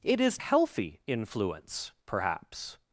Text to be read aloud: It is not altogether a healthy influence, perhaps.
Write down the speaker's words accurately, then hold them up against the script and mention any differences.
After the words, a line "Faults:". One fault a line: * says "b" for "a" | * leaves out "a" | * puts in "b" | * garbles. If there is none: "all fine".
It is healthy influence, perhaps.
Faults:
* leaves out "not altogether a"